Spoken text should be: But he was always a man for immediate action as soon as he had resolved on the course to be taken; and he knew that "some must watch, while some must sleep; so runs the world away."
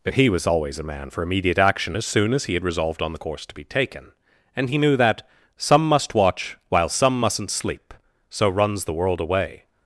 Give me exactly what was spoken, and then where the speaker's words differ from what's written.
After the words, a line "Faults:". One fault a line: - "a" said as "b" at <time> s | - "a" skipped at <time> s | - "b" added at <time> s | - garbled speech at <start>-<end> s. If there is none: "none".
But he was always a man for immediate action as soon as he had resolved on the course to be taken; and he knew that "some must watch, while some mustn't sleep; so runs the world away."
Faults:
- "must" said as "mustn't" at 7.2 s